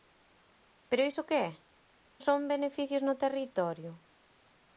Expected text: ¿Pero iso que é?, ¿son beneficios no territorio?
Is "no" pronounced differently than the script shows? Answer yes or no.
no